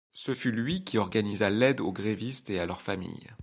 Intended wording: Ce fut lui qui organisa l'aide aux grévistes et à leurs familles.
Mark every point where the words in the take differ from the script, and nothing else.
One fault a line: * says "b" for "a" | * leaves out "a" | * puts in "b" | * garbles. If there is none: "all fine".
all fine